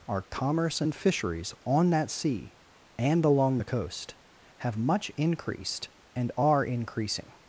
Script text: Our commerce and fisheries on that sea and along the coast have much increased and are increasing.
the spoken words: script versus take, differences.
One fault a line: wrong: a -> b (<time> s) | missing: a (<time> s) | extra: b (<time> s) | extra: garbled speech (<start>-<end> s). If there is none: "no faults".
no faults